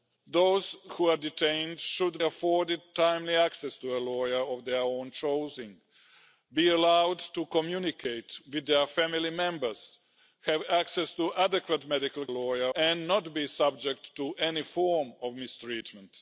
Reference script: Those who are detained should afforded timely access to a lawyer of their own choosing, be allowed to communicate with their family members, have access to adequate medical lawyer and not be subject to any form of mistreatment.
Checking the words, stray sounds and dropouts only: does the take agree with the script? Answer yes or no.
yes